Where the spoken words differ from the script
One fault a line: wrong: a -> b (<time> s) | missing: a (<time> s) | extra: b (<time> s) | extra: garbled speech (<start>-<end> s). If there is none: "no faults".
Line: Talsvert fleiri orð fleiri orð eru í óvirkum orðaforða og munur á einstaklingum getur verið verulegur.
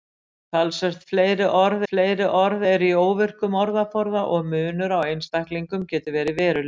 no faults